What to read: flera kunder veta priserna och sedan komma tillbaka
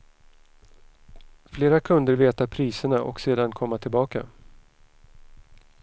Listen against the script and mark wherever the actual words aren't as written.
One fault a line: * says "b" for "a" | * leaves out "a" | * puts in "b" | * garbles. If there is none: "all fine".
all fine